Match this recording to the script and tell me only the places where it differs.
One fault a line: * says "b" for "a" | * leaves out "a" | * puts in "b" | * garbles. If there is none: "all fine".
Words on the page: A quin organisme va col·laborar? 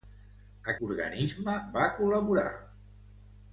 * leaves out "quin"